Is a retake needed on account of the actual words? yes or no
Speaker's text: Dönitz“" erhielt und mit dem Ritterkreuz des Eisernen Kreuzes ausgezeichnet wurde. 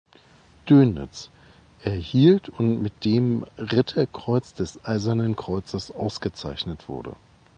no